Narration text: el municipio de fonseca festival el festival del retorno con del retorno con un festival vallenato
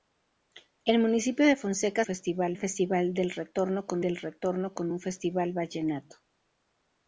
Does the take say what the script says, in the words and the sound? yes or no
yes